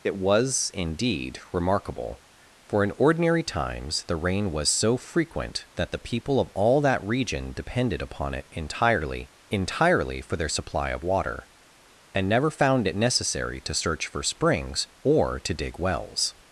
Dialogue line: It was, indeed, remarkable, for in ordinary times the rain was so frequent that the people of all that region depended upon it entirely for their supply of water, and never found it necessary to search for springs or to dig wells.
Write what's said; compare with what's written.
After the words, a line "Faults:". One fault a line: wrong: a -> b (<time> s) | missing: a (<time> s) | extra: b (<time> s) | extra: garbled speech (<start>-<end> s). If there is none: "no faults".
It was, indeed, remarkable, for in ordinary times the rain was so frequent that the people of all that region depended upon it entirely entirely for their supply of water, and never found it necessary to search for springs or to dig wells.
Faults:
extra: entirely (9.5 s)